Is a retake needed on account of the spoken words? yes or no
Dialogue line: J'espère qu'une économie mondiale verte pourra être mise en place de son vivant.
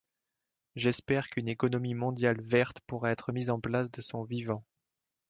no